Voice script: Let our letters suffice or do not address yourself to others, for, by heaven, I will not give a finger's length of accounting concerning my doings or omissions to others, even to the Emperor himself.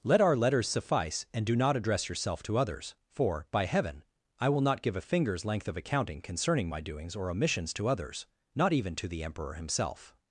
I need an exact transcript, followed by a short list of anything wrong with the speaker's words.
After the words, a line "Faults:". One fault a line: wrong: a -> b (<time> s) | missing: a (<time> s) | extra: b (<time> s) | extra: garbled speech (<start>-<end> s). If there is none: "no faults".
Let our letters suffice and do not address yourself to others, for, by heaven, I will not give a finger's length of accounting concerning my doings or omissions to others, not even to the Emperor himself.
Faults:
wrong: or -> and (1.3 s)
extra: not (8.6 s)